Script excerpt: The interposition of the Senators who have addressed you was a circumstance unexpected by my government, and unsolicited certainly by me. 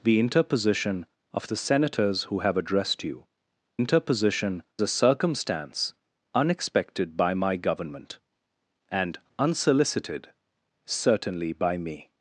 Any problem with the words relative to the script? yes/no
yes